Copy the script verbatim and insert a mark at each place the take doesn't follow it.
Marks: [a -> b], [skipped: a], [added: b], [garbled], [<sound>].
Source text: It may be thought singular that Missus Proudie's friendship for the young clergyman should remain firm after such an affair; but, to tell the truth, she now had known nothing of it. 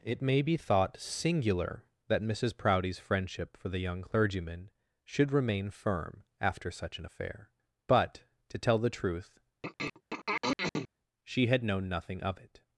It may be thought singular that Missus Proudie's friendship for the young clergyman should remain firm after such an affair; but, to tell the truth, [throat clearing] she [skipped: now] had known nothing of it.